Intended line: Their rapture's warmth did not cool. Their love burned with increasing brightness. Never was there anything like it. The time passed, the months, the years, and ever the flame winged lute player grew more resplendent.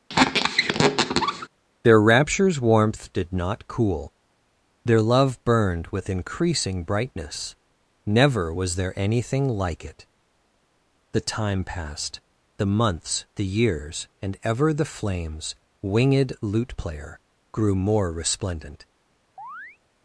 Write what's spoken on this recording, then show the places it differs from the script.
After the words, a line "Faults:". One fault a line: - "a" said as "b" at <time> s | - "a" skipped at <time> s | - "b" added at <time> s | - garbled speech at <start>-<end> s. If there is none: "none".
Their rapture's warmth did not cool. Their love burned with increasing brightness. Never was there anything like it. The time passed, the months, the years, and ever the flames winged lute player grew more resplendent.
Faults:
- "flame" said as "flames" at 14.8 s